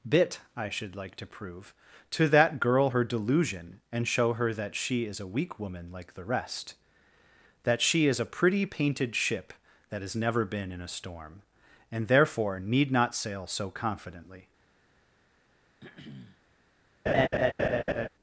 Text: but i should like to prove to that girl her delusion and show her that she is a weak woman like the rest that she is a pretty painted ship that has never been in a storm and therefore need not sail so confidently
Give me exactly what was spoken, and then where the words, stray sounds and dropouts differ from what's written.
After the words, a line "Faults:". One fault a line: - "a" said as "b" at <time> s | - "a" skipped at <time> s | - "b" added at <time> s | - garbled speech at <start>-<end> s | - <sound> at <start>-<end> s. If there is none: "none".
bit i should like to prove to that girl her delusion and show her that she is a weak woman like the rest that she is a pretty painted ship that has never been in a storm and therefore need not sail so confidently
Faults:
- "but" said as "bit" at 0.1 s
- throat clearing at 15.8-16.4 s
- laugh at 17.1-18.1 s